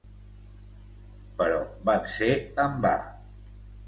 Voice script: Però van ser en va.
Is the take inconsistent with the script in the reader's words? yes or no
no